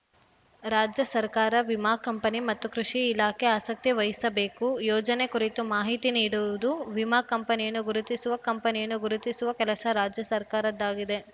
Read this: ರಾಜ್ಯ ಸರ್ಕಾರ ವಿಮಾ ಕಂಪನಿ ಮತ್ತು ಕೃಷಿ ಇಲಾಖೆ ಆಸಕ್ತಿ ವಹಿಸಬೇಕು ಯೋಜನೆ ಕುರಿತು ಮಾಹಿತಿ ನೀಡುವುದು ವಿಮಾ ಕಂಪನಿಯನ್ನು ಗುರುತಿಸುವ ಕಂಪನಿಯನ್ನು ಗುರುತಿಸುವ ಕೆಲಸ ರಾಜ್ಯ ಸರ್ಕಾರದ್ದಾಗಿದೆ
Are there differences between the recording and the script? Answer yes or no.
no